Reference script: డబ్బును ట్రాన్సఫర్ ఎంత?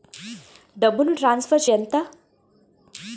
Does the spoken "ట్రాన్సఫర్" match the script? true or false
true